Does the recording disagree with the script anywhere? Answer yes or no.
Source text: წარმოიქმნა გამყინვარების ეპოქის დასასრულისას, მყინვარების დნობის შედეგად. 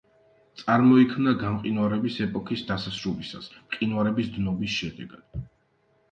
no